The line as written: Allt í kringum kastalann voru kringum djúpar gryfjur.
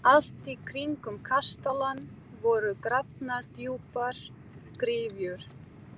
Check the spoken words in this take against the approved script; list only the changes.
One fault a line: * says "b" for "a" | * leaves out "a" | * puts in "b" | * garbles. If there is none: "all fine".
* says "grafnar" for "kringum"